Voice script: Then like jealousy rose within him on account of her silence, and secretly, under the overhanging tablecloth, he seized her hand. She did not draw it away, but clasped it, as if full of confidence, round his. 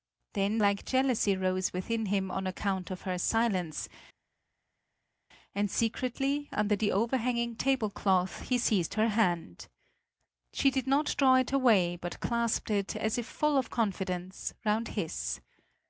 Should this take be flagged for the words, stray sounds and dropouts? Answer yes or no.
no